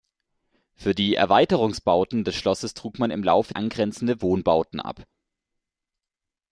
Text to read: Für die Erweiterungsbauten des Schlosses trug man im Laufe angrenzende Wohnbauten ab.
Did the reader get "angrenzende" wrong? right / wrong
right